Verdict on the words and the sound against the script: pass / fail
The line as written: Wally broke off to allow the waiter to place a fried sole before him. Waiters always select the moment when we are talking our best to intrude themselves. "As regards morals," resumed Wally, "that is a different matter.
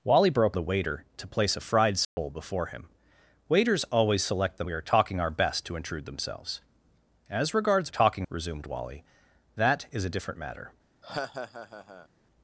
fail